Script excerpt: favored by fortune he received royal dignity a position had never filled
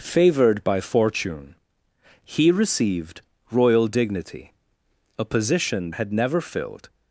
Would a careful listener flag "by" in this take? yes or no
no